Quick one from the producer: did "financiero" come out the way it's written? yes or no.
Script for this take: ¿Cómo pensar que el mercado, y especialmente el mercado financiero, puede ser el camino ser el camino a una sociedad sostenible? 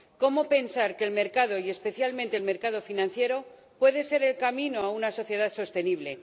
yes